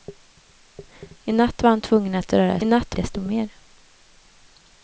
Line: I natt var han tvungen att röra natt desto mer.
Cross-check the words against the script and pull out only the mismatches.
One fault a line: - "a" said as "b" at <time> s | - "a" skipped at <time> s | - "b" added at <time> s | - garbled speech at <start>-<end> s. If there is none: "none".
none